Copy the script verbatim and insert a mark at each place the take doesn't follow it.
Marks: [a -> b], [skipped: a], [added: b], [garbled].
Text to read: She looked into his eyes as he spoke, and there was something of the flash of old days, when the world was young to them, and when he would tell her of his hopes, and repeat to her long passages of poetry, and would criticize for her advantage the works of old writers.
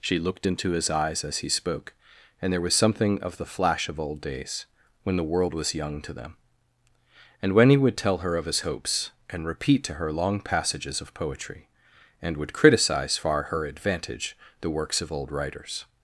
She looked into his eyes as he spoke, and there was something of the flash of old days, when the world was young to them, and when he would tell her of his hopes, and repeat to her long passages of poetry, and would criticize [for -> far] her advantage the works of old writers.